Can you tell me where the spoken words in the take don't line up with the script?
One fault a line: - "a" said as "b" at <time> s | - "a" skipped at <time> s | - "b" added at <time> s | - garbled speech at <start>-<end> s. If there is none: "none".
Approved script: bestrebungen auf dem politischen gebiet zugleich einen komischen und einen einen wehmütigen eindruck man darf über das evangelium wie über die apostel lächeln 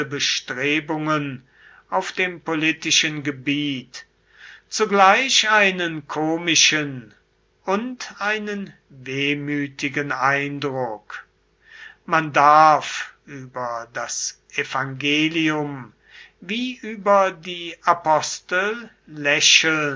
- "einen" skipped at 8.7 s